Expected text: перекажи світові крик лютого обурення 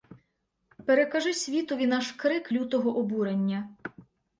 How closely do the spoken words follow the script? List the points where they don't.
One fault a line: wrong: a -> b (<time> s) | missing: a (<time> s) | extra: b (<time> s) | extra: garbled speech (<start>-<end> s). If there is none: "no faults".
extra: наш (1.9 s)